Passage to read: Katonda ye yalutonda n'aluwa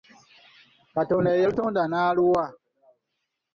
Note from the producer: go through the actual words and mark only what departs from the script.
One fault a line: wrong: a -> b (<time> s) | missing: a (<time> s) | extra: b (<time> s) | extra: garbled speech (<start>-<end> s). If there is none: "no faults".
no faults